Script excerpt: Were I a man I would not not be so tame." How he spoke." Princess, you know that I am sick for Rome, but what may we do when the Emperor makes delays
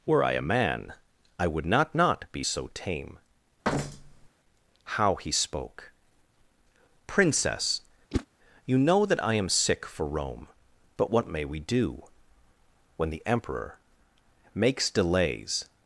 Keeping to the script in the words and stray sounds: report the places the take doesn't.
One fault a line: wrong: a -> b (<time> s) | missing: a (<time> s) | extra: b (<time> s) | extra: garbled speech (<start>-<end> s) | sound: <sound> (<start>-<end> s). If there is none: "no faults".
sound: thud (3.6-4.3 s)
sound: whoosh (8.1-8.3 s)